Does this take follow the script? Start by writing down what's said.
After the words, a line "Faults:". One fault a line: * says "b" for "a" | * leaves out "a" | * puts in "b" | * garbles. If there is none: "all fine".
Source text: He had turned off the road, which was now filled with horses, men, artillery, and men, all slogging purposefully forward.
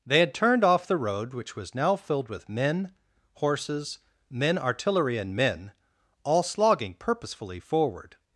They had turned off the road, which was now filled with men, horses, men, artillery, and men, all slogging purposefully forward.
Faults:
* says "They" for "He"
* puts in "men"